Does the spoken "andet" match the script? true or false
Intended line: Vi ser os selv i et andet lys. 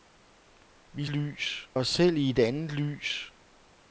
true